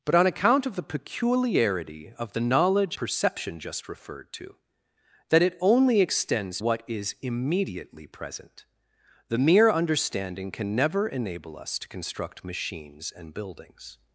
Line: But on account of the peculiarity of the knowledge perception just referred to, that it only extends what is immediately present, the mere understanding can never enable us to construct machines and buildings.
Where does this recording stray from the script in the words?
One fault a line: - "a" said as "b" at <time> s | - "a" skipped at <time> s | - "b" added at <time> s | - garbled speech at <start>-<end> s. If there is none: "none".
none